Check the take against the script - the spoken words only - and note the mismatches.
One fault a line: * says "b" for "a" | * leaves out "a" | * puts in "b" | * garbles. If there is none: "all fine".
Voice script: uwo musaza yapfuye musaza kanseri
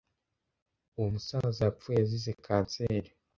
* says "azize" for "musaza"